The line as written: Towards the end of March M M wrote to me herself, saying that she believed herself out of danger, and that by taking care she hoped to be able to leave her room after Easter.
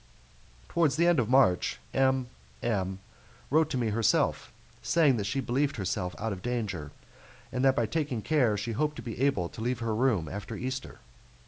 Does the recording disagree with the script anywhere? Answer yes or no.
no